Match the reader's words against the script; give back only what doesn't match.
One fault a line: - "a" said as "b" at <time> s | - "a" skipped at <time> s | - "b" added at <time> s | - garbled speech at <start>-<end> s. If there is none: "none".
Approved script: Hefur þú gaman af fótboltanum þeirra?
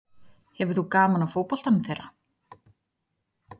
none